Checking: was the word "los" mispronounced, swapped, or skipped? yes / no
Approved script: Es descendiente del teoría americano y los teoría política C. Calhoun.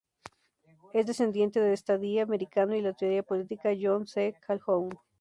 yes